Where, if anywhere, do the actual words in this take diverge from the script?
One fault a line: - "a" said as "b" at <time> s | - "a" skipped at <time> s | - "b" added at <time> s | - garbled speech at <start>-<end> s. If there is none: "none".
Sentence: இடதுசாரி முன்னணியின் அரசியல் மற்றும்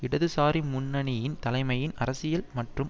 - "தலைமையின்" added at 1.4 s